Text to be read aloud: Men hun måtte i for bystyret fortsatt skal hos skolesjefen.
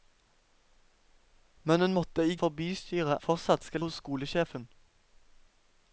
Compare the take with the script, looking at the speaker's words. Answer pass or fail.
pass